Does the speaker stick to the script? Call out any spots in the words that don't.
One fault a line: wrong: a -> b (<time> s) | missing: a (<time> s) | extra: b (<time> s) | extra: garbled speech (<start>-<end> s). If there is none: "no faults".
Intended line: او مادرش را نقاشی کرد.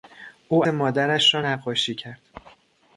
no faults